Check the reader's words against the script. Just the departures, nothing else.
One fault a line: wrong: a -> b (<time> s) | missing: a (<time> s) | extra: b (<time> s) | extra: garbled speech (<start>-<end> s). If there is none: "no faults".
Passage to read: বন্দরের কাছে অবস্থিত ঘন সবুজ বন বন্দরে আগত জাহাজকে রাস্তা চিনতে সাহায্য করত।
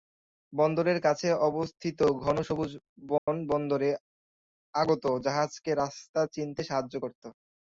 no faults